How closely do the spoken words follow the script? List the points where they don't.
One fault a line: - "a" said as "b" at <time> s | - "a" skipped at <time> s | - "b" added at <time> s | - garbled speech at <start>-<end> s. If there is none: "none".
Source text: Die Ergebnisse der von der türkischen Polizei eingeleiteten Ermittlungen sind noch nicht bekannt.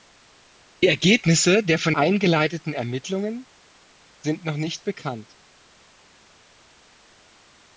- "der türkischen Polizei" skipped at 1.9 s